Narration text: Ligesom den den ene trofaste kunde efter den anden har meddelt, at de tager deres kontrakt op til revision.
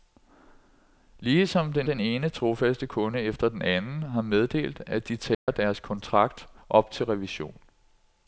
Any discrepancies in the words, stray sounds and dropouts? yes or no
yes